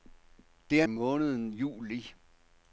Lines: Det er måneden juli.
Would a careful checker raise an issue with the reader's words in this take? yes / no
no